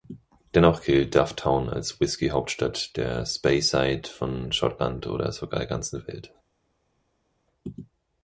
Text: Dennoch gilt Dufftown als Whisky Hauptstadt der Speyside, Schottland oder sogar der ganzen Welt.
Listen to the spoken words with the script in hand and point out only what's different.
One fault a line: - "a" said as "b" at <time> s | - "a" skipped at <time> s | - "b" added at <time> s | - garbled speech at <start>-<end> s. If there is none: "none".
- "von" added at 4.1 s